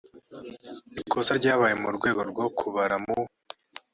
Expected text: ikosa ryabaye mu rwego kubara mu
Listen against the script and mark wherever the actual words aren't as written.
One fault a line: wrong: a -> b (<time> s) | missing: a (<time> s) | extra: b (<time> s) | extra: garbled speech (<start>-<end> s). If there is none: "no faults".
extra: rwo (2.3 s)